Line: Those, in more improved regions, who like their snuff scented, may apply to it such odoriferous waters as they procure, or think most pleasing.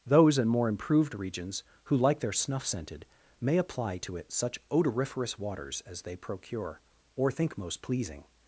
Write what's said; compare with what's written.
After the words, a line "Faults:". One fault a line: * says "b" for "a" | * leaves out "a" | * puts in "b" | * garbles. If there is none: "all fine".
Those, in more improved regions, who like their snuff scented, may apply to it such odoriferous waters as they procure, or think most pleasing.
Faults:
all fine